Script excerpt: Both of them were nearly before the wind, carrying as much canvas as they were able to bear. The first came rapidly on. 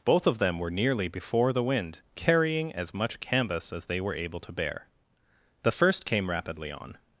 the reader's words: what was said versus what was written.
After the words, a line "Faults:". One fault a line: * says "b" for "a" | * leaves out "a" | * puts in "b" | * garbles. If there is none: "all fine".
Both of them were nearly before the wind, carrying as much canvas as they were able to bear. The first came rapidly on.
Faults:
all fine